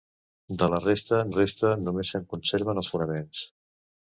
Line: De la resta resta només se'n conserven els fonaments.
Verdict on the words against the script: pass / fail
pass